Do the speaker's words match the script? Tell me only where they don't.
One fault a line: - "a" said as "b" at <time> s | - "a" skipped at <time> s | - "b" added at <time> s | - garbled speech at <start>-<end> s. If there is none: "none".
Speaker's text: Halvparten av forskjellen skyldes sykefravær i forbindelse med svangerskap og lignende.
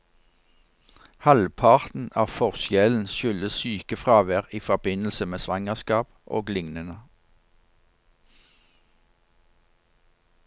none